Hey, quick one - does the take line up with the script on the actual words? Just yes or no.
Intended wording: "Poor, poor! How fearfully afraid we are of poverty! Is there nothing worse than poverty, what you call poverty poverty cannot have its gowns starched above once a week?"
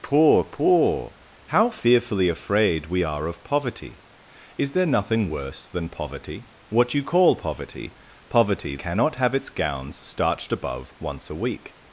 yes